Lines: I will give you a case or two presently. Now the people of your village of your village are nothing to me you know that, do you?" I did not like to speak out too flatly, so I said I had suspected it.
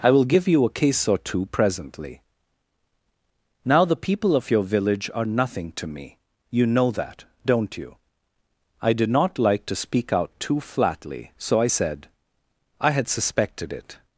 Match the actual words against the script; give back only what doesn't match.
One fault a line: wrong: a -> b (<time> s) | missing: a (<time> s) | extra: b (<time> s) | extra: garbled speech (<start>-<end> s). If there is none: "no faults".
missing: of your village (5.1 s)
wrong: do -> don't (7.5 s)